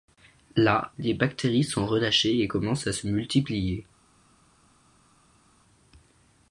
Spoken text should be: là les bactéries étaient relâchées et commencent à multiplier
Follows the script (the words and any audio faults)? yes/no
no